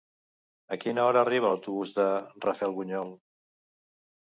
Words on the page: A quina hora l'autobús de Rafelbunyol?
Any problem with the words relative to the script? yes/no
yes